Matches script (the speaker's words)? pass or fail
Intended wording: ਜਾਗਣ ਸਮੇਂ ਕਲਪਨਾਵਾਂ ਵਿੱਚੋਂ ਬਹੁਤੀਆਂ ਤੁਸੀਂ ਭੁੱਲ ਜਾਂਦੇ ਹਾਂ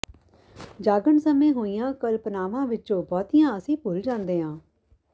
fail